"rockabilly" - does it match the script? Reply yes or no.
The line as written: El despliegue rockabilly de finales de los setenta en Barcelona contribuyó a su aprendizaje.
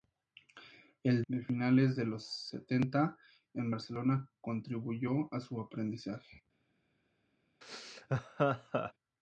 no